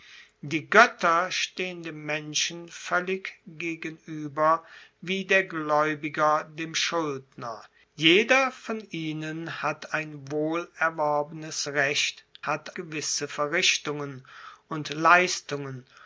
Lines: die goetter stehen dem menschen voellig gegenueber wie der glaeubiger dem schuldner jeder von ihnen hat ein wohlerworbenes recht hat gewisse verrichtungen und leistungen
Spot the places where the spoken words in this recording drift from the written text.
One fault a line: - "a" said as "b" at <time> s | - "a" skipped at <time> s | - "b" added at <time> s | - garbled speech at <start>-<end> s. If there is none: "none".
none